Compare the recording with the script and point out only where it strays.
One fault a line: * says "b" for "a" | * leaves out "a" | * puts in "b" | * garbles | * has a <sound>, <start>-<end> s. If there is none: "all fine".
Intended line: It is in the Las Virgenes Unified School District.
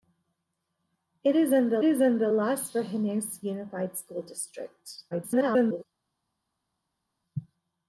* puts in "is in the"
* garbles